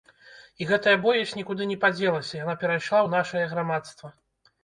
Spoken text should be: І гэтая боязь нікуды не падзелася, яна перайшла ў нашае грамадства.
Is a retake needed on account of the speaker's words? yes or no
no